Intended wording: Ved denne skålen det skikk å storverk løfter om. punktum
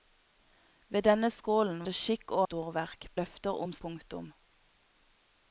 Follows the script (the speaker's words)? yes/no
yes